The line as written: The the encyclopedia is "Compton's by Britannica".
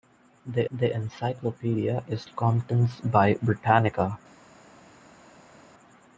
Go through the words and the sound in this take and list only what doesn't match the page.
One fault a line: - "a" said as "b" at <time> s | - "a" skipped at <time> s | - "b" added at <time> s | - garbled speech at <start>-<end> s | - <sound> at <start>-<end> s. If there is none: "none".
none